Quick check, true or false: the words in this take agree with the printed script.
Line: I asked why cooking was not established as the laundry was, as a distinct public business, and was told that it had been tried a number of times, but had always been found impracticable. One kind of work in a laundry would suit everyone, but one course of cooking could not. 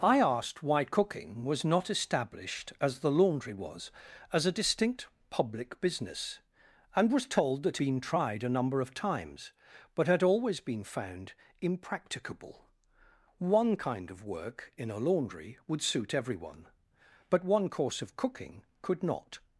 false